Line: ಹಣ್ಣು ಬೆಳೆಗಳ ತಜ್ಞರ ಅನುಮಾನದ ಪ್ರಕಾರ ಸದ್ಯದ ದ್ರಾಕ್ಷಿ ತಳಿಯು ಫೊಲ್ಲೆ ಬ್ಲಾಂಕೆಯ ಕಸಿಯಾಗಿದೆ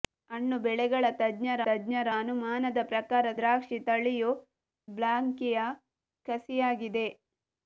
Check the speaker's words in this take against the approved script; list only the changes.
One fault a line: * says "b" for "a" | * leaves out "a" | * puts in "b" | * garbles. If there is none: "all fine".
* puts in "ತಜ್ಞರ"
* leaves out "ಸದ್ಯದ"
* leaves out "ಫೊಲ್ಲೆ"